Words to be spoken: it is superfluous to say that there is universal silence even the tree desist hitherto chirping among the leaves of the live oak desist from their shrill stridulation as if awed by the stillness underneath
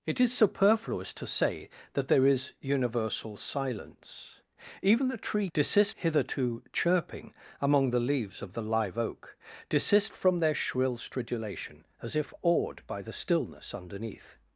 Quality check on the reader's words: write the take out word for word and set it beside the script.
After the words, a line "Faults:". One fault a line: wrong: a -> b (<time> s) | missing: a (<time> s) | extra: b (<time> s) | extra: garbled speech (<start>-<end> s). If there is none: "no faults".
it is superfluous to say that there is universal silence even the tree desist hitherto chirping among the leaves of the live oak desist from their shrill stridulation as if awed by the stillness underneath
Faults:
no faults